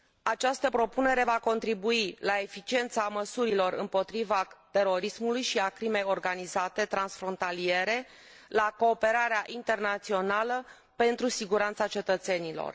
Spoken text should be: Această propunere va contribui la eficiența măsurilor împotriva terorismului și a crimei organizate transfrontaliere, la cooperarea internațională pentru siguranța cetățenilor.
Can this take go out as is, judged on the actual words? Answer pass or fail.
pass